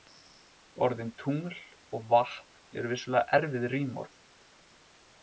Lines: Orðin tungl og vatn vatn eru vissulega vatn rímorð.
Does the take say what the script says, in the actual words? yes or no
no